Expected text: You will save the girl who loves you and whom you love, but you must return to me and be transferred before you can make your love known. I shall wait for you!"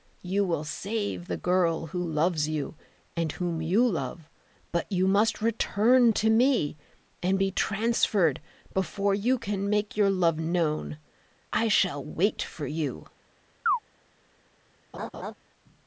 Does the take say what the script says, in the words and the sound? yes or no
no